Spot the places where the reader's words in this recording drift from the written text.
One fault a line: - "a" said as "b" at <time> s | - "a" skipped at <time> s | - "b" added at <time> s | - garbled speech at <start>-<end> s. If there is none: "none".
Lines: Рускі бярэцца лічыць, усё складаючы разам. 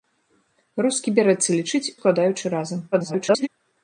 - "усё" skipped at 1.9 s
- garbled speech at 2.9-3.5 s